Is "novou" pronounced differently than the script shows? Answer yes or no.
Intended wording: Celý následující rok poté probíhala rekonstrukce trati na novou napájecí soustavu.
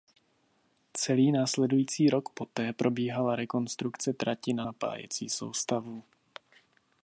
yes